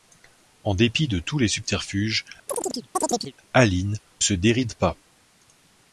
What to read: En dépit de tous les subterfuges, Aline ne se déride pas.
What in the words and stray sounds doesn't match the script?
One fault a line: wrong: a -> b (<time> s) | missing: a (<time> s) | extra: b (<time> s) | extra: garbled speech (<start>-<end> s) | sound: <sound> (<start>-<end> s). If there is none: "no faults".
sound: chirp (2.5-3.3 s)
missing: ne (4.0 s)